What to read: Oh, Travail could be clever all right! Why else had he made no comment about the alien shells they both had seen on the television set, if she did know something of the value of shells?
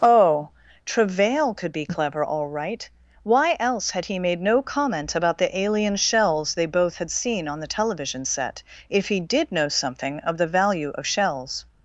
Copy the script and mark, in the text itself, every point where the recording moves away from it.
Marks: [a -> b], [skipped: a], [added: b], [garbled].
Oh, Travail could be clever all right! Why else had he made no comment about the alien shells they both had seen on the television set, if [she -> he] did know something of the value of shells?